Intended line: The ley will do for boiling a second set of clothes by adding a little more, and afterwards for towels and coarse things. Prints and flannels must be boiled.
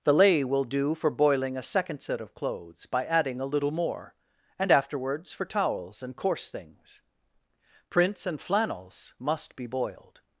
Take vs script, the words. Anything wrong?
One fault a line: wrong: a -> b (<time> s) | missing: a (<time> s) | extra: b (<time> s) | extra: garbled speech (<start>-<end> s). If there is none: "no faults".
no faults